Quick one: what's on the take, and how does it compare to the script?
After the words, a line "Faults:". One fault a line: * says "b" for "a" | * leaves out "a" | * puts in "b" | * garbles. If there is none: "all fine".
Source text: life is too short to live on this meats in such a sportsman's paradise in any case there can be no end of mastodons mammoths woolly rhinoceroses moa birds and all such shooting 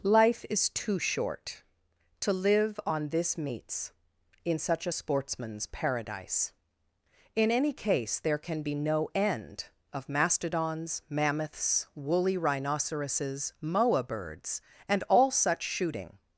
life is too short to live on this meats in such a sportsman's paradise in any case there can be no end of mastodons mammoths woolly rhinoceroses moa birds and all such shooting
Faults:
all fine